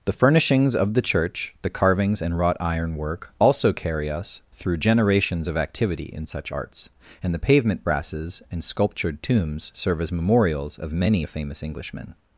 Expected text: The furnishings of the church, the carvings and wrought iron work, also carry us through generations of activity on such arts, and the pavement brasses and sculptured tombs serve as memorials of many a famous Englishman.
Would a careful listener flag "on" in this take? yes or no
yes